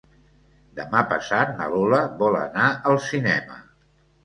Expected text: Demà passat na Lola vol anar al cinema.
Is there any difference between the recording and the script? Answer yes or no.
no